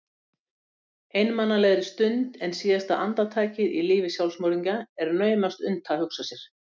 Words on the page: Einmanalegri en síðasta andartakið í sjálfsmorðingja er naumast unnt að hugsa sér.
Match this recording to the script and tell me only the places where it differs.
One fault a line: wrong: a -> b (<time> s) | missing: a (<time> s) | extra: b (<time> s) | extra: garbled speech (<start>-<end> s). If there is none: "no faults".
extra: stund (1.9 s)
extra: lífi (3.9 s)